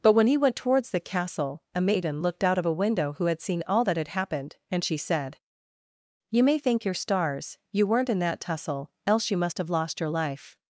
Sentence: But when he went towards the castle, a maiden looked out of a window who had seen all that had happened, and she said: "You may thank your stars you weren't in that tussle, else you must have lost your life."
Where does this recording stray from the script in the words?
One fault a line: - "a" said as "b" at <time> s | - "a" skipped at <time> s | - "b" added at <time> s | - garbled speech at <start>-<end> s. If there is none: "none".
none